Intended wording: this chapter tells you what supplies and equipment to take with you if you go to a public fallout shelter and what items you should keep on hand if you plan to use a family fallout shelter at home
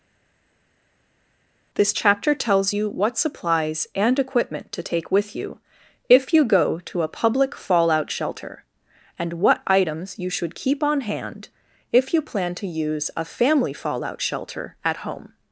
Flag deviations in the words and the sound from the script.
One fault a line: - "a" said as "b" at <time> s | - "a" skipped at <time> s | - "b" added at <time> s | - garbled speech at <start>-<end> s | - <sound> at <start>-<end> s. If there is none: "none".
none